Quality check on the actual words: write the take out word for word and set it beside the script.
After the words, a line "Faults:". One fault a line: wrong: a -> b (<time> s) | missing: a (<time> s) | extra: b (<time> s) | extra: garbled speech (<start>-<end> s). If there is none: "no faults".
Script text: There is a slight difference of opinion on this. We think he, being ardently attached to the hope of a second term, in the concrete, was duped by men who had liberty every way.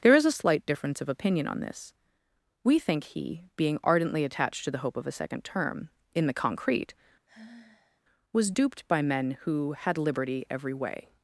There is a slight difference of opinion on this. We think he, being ardently attached to the hope of a second term, in the concrete, was duped by men who had liberty every way.
Faults:
no faults